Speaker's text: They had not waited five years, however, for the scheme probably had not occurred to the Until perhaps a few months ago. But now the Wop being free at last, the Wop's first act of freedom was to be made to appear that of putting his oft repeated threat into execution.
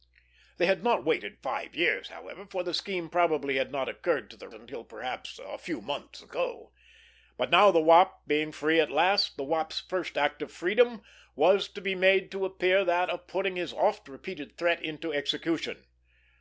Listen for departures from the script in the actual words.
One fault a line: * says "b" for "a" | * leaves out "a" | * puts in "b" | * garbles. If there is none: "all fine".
all fine